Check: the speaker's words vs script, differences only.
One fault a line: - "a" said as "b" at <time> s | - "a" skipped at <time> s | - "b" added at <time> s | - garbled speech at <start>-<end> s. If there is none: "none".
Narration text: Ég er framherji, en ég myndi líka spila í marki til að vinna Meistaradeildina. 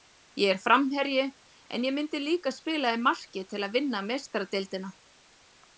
none